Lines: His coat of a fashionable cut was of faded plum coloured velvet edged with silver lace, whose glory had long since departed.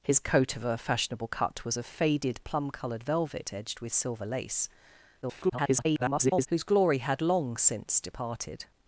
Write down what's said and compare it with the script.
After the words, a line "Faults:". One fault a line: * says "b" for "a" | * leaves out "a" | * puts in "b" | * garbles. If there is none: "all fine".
His coat of a fashionable cut was of faded plum coloured velvet edged with silver lace, [garbled] whose glory had long since departed.
Faults:
* garbles